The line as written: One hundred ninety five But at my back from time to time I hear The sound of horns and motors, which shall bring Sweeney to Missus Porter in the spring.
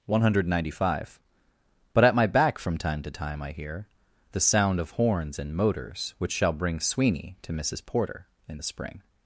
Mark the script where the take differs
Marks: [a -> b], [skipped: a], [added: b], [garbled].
One hundred ninety five But at my back from time to time I hear The sound of horns and motors, which shall bring Sweeney to Missus Porter in the spring.